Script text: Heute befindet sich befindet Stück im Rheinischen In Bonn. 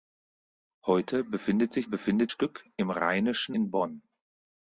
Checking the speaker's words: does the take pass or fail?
pass